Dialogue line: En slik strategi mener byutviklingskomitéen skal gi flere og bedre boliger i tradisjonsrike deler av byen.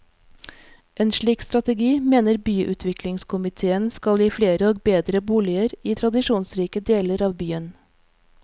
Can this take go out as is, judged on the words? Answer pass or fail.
pass